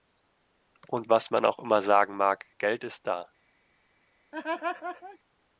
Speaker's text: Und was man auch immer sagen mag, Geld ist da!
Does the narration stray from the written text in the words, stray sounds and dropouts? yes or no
yes